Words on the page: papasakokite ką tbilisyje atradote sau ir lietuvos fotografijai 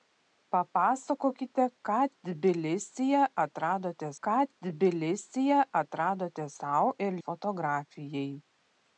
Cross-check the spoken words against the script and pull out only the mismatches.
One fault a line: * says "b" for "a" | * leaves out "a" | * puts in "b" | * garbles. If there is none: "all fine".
* puts in "ką tbilisyje atradote"
* leaves out "lietuvos"